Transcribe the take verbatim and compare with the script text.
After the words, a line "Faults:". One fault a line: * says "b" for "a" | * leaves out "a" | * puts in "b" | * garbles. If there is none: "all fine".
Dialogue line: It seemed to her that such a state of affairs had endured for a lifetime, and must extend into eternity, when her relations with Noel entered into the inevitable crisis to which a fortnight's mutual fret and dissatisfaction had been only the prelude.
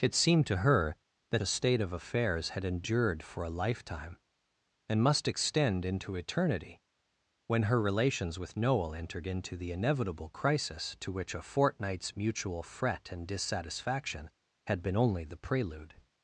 It seemed to her that a state of affairs had endured for a lifetime, and must extend into eternity, when her relations with Noel entered into the inevitable crisis to which a fortnight's mutual fret and dissatisfaction had been only the prelude.
Faults:
* leaves out "such"